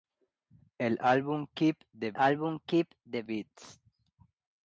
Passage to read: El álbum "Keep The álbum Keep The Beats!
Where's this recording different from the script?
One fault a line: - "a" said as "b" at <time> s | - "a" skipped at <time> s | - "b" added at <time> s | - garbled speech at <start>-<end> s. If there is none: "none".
none